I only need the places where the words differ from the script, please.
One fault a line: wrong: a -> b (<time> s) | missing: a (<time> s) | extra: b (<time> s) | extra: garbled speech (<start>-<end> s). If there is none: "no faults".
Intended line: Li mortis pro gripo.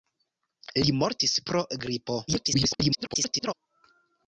extra: garbled speech (2.3-3.5 s)